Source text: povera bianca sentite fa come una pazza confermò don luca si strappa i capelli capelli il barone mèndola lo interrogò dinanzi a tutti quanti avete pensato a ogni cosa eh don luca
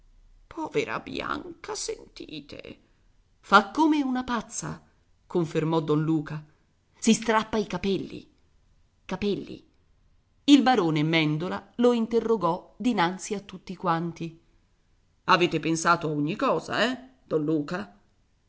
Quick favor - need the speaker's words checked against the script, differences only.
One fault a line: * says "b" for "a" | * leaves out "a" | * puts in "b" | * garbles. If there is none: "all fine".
all fine